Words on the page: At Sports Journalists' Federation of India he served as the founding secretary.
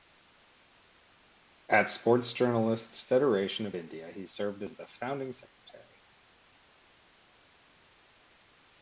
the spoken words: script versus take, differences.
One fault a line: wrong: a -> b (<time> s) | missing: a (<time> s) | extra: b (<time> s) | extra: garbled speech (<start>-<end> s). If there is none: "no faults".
no faults